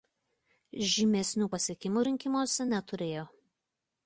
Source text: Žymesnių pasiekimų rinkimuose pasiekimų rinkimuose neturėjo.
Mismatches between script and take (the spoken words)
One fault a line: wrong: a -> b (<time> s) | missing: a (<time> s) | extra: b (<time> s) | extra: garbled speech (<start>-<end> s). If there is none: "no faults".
missing: pasiekimų rinkimuose (2.7 s)